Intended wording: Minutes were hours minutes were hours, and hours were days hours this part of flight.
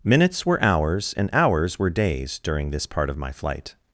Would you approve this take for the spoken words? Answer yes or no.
no